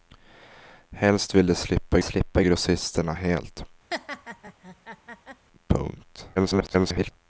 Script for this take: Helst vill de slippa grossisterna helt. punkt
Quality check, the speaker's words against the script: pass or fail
fail